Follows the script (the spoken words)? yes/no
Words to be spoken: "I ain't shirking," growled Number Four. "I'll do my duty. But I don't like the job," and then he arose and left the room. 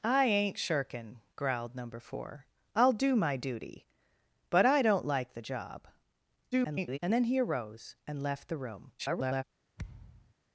no